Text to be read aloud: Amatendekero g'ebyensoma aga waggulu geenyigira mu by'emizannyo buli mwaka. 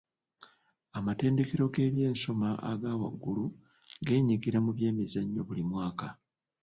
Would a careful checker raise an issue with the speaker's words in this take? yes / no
no